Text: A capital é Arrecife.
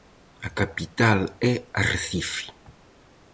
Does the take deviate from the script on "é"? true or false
false